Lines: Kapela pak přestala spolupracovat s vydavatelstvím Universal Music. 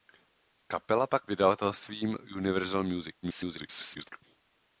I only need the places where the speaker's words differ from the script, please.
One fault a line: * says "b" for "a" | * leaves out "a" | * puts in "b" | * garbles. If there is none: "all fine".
* leaves out "přestala spolupracovat s"
* garbles